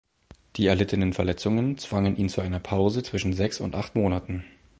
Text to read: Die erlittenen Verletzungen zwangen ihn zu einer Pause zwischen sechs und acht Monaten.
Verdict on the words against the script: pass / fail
pass